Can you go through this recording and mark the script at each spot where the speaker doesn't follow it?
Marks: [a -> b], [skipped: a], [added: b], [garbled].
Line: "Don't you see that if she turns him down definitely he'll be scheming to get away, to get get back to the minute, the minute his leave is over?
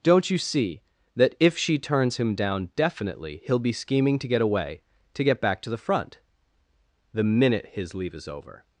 "Don't you see that if she turns him down definitely he'll be scheming to get away, to get [skipped: get] back to the [minute, -> front] the minute his leave is over?